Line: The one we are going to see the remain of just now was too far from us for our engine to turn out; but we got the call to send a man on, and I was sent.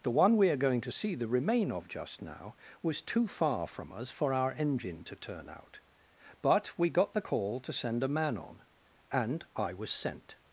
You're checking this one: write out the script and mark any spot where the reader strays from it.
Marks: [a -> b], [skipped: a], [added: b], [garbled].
The one we are going to see the remain of just now was too far from us for our engine to turn out; but we got the call to send a man on, and I was sent.